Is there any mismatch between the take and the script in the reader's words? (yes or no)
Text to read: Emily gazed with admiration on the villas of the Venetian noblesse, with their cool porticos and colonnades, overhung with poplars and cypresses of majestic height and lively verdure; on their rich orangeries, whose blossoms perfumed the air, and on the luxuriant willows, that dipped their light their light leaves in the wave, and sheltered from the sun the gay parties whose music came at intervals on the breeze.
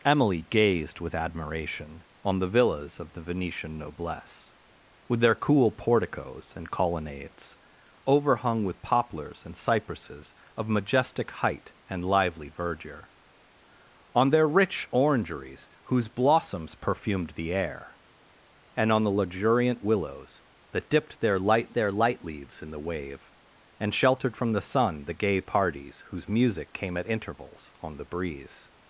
no